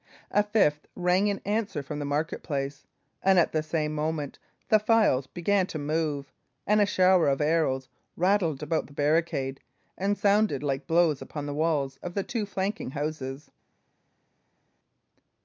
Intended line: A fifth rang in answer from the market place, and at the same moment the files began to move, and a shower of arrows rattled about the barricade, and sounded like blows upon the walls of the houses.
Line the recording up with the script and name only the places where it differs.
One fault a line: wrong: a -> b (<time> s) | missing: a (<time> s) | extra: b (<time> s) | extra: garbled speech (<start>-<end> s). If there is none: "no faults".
extra: two flanking (12.2 s)